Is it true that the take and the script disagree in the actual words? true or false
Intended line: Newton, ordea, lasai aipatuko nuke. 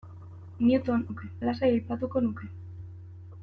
true